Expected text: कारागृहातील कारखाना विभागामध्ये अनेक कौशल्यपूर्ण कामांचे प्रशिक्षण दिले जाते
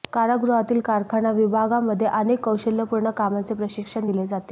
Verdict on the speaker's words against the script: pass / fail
pass